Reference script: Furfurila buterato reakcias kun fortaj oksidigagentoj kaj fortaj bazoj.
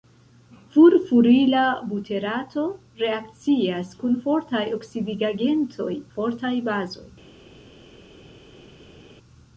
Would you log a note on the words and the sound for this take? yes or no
yes